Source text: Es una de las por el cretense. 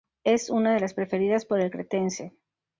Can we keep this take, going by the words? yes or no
no